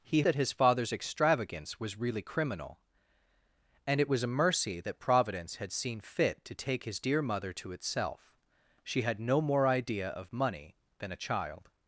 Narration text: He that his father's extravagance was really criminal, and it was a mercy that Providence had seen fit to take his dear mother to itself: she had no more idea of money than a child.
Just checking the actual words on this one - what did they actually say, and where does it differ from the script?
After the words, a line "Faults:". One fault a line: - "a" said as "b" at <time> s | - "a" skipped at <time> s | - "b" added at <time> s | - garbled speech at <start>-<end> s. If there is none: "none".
He that his father's extravagance was really criminal, and it was a mercy that Providence had seen fit to take his dear mother to itself: she had no more idea of money than a child.
Faults:
none